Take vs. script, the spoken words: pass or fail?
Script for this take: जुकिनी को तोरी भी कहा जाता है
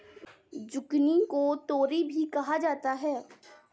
pass